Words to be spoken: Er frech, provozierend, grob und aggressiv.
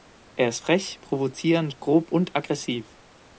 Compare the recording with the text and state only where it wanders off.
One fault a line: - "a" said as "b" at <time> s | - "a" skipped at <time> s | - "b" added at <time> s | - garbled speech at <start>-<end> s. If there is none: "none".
- "ist" added at 0.5 s